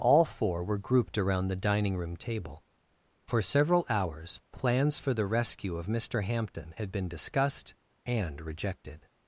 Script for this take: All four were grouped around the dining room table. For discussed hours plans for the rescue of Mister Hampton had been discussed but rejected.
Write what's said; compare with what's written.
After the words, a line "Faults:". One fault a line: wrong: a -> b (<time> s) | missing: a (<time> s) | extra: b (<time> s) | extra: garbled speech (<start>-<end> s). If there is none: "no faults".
All four were grouped around the dining room table. For several hours plans for the rescue of Mister Hampton had been discussed and rejected.
Faults:
wrong: discussed -> several (3.4 s)
wrong: but -> and (8.0 s)